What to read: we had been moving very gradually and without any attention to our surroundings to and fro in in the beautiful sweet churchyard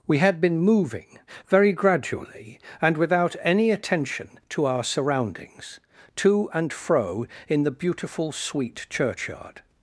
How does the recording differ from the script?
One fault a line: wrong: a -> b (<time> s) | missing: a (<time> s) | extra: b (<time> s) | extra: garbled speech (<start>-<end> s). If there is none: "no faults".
missing: in (7.6 s)